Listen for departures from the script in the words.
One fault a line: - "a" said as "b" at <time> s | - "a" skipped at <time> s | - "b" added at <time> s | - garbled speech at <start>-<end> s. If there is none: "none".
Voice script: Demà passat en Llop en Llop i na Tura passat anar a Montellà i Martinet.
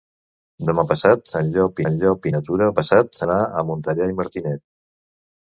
none